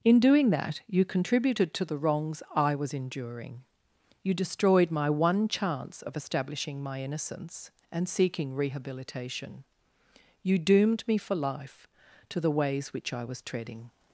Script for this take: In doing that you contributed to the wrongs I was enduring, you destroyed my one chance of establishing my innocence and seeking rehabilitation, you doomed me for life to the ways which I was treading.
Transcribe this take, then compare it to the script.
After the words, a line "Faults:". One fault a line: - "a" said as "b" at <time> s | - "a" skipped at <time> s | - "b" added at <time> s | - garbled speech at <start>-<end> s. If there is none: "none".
In doing that you contributed to the wrongs I was enduring, you destroyed my one chance of establishing my innocence and seeking rehabilitation, you doomed me for life to the ways which I was treading.
Faults:
none